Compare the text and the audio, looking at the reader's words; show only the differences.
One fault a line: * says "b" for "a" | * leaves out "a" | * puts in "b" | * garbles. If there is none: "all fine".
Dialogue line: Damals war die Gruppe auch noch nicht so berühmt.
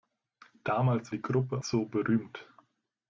* leaves out "war"
* leaves out "auch noch nicht"